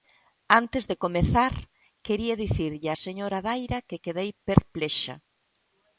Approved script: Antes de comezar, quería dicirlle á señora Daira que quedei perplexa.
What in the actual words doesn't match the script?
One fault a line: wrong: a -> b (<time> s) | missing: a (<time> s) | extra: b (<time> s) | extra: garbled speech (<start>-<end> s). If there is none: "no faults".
no faults